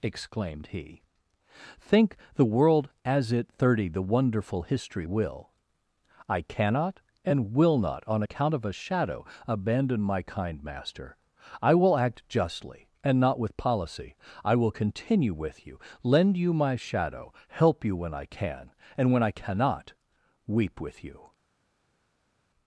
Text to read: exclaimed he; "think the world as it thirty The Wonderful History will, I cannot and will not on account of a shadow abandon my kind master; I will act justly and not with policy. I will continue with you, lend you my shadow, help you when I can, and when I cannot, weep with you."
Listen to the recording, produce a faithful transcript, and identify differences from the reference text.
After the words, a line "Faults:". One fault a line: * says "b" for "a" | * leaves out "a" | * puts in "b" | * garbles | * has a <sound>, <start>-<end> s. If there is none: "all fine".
exclaimed he; "think the world as it thirty The Wonderful History will, I cannot and will not on account of a shadow abandon my kind master; I will act justly and not with policy. I will continue with you, lend you my shadow, help you when I can, and when I cannot, weep with you."
Faults:
all fine